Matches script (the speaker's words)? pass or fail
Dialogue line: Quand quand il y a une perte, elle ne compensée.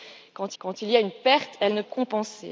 pass